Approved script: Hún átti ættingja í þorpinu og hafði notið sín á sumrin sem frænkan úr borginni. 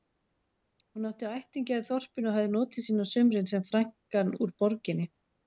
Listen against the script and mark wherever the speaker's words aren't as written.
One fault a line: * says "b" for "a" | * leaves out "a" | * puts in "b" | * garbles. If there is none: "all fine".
all fine